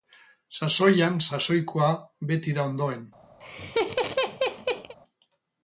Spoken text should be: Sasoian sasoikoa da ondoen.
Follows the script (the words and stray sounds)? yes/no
no